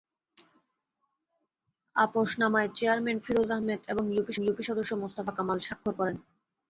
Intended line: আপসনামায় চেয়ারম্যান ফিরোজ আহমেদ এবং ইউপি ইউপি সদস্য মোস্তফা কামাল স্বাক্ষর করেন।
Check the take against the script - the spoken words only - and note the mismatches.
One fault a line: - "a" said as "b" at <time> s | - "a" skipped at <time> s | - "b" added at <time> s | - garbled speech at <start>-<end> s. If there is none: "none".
none